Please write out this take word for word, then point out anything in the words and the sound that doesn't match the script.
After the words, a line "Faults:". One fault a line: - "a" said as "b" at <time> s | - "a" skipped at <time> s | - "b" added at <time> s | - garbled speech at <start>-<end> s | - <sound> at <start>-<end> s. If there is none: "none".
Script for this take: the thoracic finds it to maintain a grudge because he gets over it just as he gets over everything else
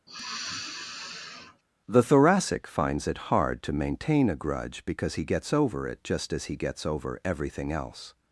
the thoracic finds it hard to maintain a grudge because he gets over it just as he gets over everything else
Faults:
- sigh at 0.1-1.6 s
- "hard" added at 3.3 s